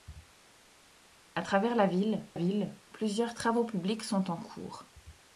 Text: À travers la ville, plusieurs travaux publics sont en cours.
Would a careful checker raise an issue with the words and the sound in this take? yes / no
yes